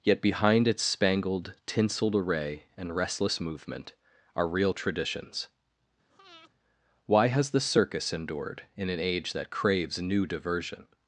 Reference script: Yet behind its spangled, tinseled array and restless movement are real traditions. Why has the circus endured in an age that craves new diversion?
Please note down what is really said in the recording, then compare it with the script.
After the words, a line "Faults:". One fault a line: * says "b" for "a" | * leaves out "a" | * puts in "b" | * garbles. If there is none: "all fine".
Yet behind its spangled, tinseled array and restless movement are real traditions. Why has the circus endured in an age that craves new diversion?
Faults:
all fine